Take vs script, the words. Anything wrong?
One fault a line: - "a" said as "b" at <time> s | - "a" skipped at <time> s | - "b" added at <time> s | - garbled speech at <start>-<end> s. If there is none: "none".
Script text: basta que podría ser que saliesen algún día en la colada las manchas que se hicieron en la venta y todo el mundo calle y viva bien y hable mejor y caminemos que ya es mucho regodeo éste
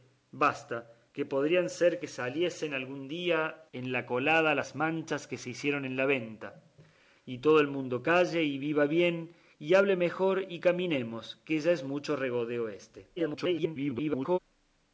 - garbled speech at 13.2-14.4 s